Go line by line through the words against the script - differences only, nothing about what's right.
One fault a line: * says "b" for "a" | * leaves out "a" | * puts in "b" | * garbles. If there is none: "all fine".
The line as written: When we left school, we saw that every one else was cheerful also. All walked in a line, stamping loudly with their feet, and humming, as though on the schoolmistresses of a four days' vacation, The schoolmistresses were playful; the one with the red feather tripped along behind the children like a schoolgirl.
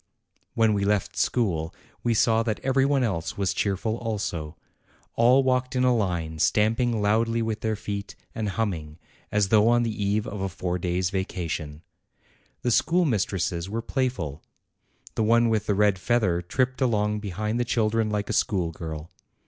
* says "eve" for "schoolmistresses"